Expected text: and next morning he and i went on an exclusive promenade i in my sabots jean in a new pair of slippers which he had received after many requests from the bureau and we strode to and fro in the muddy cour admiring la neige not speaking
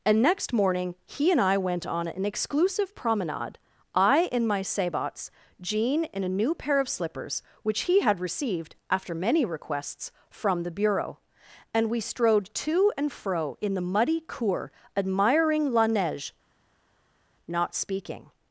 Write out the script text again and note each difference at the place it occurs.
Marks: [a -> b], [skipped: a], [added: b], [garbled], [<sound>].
and next morning he and i went on an exclusive promenade i in my sabots jean in a new pair of slippers which he had received after many requests from the bureau and we strode to and fro in the muddy cour admiring la neige not speaking